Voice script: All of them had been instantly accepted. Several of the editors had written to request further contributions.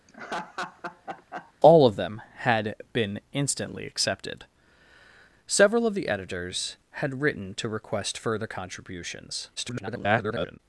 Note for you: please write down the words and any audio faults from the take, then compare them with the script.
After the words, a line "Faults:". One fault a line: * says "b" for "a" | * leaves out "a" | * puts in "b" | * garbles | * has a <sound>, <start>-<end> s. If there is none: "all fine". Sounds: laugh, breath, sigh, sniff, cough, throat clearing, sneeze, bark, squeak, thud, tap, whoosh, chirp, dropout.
All of them had been instantly accepted. Several of the editors had written to request further contributions. [garbled]
Faults:
* has a laugh, 0.1-1.5 s
* garbles